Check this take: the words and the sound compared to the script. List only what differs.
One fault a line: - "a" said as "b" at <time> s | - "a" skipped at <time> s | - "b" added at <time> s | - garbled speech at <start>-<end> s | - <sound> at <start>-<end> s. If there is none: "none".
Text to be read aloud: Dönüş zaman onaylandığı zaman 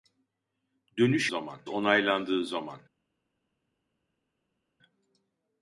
none